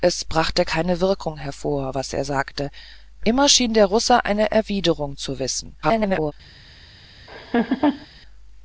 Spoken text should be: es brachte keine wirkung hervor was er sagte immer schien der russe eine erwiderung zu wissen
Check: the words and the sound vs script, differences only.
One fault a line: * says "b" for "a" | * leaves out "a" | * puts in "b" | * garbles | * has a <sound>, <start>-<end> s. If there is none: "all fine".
* garbles
* has a laugh, 7.3-8.1 s